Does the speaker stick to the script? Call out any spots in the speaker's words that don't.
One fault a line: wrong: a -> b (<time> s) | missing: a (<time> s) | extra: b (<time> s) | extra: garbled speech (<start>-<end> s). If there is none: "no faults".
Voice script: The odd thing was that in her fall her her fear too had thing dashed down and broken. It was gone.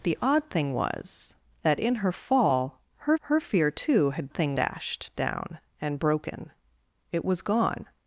no faults